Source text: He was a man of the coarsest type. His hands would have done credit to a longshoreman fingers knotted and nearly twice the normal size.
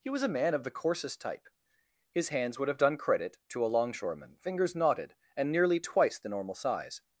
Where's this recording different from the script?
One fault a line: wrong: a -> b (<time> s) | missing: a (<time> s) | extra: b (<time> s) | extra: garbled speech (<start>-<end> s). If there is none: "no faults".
no faults